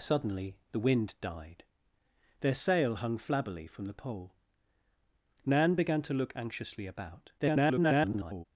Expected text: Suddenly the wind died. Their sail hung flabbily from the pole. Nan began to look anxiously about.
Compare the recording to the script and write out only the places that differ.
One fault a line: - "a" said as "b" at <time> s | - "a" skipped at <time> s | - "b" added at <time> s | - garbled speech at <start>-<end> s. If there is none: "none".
- garbled speech at 7.4-8.4 s